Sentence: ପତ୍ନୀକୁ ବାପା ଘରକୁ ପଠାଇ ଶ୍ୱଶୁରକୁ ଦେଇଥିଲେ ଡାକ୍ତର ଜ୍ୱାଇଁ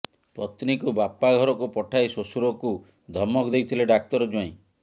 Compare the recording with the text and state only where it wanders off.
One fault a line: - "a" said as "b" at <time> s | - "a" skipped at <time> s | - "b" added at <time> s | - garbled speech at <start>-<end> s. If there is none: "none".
- "ଧମକ" added at 3.1 s